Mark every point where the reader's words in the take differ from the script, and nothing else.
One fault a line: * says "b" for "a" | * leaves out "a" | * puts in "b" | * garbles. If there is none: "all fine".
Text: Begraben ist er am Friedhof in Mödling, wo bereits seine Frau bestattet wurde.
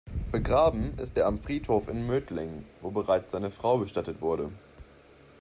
all fine